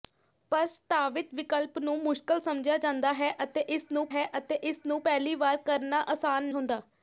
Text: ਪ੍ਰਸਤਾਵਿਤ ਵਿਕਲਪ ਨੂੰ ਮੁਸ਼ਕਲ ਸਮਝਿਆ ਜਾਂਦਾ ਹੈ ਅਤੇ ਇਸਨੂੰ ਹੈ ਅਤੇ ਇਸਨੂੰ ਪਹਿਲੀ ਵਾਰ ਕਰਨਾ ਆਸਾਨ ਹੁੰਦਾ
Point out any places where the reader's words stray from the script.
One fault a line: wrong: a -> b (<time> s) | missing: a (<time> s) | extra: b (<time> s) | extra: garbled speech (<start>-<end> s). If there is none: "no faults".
no faults